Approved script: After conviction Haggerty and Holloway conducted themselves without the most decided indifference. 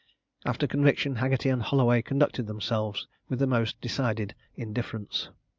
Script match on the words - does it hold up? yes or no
no